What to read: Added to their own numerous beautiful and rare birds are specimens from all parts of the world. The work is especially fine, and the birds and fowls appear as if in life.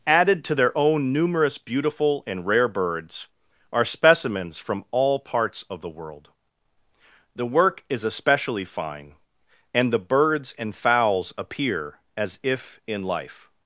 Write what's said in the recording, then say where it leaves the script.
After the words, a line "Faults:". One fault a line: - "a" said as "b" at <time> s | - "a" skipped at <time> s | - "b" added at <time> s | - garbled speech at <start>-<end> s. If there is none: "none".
Added to their own numerous beautiful and rare birds are specimens from all parts of the world. The work is especially fine, and the birds and fowls appear as if in life.
Faults:
none